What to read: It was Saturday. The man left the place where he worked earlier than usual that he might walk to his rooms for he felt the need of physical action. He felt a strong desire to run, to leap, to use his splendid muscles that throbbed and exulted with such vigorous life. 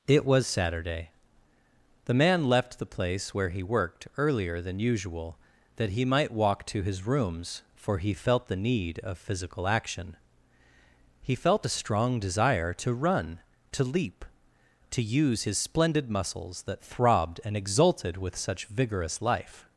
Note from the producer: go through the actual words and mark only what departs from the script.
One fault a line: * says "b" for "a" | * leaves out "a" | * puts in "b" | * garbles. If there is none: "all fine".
all fine